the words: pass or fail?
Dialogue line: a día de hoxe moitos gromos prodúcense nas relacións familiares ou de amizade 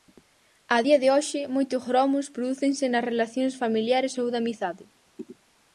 pass